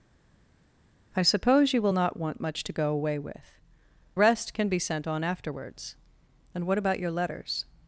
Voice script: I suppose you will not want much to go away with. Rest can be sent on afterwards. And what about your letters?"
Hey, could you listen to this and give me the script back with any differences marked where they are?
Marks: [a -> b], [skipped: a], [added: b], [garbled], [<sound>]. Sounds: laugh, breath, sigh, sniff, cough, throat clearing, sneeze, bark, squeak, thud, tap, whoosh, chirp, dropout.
I suppose you will not want much to go away with. Rest can be sent on afterwards. And what about your letters?"